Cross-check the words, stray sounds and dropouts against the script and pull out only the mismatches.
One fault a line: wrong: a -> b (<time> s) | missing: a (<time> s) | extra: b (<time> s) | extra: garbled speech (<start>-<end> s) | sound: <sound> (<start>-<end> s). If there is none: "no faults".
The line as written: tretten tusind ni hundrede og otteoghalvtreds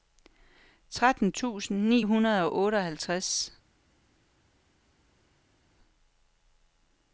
no faults